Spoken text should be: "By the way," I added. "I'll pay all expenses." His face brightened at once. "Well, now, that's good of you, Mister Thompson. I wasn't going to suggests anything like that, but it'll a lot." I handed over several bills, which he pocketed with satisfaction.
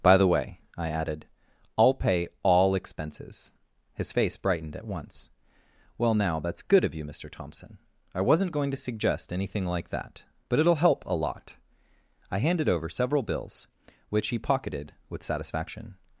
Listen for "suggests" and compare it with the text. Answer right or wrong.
wrong